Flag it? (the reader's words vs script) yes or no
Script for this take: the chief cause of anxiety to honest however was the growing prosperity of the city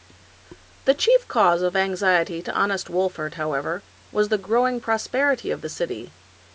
yes